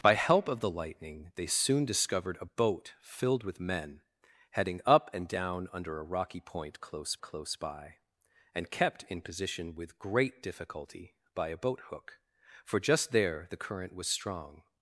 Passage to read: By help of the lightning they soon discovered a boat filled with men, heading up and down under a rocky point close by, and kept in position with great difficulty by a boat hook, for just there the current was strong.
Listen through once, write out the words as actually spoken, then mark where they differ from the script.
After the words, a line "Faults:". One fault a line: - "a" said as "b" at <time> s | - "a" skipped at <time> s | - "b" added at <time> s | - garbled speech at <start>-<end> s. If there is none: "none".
By help of the lightning they soon discovered a boat filled with men, heading up and down under a rocky point close close by, and kept in position with great difficulty by a boat hook, for just there the current was strong.
Faults:
- "close" added at 7.2 s